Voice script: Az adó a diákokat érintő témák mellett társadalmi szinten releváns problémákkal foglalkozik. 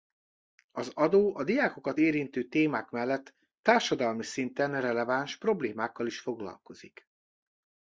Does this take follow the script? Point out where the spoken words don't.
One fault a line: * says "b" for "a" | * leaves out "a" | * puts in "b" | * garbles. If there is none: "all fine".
* puts in "is"